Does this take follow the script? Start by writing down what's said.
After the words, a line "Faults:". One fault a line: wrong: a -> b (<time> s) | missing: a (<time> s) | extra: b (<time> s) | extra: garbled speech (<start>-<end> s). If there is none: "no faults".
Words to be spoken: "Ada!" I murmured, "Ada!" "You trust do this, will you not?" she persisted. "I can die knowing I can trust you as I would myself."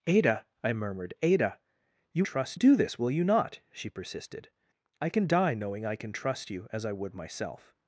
"Ada!" I murmured, "Ada!" "You trust do this, will you not?" she persisted. "I can die knowing I can trust you as I would myself."
Faults:
no faults